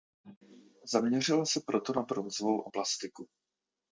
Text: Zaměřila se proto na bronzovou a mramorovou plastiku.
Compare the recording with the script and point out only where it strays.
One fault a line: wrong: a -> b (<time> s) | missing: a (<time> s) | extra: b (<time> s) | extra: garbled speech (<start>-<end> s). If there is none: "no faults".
missing: mramorovou (2.7 s)